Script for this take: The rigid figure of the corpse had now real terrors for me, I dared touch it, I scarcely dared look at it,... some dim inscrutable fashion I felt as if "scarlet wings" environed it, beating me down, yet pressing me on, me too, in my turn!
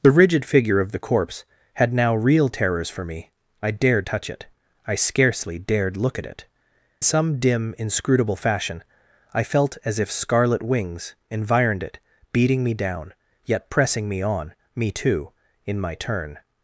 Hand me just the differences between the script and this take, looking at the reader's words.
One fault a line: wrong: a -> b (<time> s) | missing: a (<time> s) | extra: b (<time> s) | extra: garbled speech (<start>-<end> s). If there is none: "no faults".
no faults